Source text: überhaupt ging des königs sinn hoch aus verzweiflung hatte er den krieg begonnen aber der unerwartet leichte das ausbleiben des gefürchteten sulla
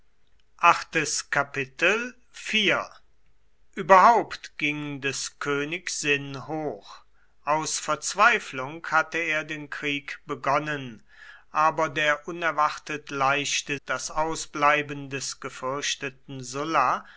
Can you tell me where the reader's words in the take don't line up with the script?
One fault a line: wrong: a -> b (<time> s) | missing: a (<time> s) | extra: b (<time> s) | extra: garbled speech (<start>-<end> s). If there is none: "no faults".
no faults